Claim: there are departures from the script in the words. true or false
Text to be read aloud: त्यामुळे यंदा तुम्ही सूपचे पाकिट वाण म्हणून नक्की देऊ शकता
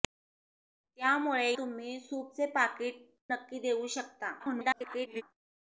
true